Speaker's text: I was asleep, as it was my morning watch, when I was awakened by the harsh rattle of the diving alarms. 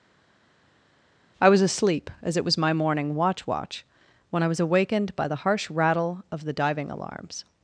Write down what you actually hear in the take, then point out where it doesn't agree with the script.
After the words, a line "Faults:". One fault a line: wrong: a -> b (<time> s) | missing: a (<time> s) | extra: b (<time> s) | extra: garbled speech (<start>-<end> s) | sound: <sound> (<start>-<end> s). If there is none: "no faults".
I was asleep, as it was my morning watch watch, when I was awakened by the harsh rattle of the diving alarms.
Faults:
extra: watch (3.4 s)